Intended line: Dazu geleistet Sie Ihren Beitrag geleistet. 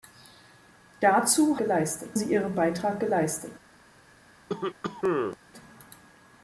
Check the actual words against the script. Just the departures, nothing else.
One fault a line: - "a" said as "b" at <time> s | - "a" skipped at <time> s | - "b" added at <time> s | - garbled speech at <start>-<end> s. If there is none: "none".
none